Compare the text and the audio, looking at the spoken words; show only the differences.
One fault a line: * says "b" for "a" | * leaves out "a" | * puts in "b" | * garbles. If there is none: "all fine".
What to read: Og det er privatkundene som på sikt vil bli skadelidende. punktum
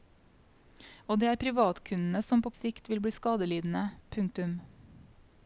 all fine